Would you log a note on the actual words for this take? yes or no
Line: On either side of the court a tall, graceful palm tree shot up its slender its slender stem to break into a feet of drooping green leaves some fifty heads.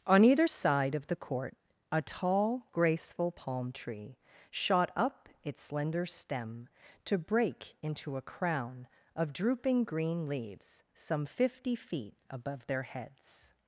yes